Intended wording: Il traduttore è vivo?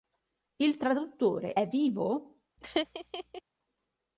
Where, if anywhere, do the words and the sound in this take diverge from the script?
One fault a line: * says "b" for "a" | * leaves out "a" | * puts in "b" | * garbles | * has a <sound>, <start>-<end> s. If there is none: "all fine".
* has a laugh, 2.6-3.4 s